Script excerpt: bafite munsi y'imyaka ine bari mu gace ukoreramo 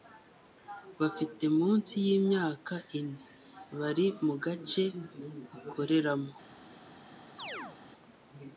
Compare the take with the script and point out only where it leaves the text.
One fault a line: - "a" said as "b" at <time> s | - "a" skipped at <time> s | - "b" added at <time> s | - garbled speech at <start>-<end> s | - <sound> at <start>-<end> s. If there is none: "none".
- chirp at 7.4-7.8 s